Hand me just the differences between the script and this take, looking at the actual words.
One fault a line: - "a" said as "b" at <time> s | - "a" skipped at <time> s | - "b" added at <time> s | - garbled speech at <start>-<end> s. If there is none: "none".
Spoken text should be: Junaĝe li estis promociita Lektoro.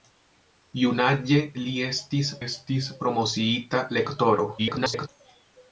- "estis" added at 2.4 s
- garbled speech at 4.6-5.1 s